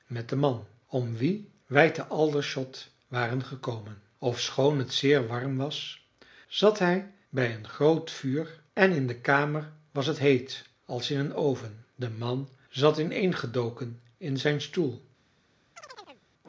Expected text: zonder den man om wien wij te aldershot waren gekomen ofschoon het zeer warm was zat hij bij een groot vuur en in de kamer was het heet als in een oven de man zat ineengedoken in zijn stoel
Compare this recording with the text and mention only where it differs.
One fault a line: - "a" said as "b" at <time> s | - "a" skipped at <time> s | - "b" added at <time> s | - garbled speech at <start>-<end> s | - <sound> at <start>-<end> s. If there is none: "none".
- "zonder" said as "met" at 0.1 s
- chirp at 15.8-16.2 s